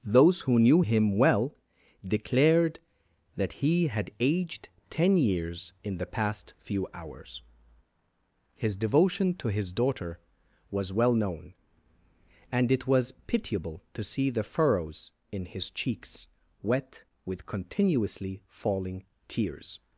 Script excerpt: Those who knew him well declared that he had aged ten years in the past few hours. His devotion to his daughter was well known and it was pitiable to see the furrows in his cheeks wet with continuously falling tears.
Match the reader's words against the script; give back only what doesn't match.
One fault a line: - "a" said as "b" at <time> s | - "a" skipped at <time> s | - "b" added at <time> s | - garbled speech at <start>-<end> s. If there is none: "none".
none